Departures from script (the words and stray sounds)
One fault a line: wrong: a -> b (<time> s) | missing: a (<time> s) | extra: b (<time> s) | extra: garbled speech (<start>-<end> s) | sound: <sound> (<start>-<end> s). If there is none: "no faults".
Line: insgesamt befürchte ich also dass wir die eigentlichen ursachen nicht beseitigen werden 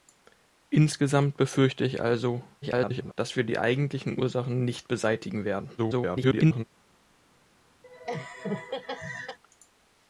extra: garbled speech (2.6-3.1 s)
extra: garbled speech (5.8-6.6 s)
sound: laugh (7.8-9.4 s)